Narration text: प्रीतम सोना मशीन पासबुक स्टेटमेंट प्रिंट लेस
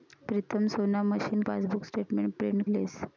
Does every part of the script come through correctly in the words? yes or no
yes